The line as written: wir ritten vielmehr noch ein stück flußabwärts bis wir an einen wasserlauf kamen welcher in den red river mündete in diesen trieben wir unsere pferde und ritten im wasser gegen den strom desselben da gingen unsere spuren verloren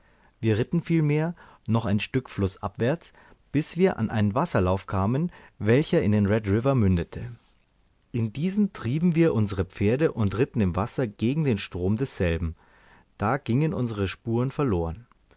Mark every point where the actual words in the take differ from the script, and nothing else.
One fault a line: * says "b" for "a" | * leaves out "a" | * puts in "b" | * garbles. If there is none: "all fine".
all fine